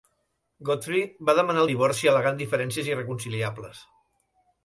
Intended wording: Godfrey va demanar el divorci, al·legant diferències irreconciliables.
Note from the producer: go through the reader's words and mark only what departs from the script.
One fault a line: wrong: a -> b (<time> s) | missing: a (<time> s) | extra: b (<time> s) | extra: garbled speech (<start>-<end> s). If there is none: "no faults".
no faults